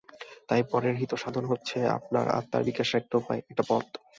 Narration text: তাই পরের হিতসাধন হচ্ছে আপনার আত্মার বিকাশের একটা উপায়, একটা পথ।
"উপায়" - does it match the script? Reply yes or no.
yes